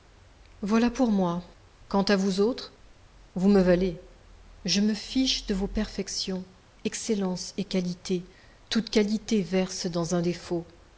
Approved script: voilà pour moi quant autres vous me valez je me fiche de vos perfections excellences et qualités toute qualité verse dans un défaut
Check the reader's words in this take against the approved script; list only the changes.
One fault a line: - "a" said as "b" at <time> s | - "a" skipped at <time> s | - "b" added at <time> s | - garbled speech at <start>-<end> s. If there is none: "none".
- "à vous" added at 2.0 s